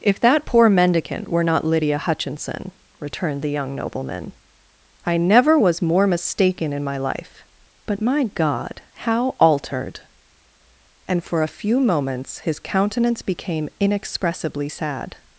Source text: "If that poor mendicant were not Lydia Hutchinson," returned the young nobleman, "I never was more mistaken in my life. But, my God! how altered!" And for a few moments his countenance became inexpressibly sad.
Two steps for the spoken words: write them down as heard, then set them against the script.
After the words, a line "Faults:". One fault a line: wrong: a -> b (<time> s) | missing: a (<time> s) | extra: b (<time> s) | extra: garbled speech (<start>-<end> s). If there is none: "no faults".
"If that poor mendicant were not Lydia Hutchinson," returned the young nobleman, "I never was more mistaken in my life. But, my God! how altered!" And for a few moments his countenance became inexpressibly sad.
Faults:
no faults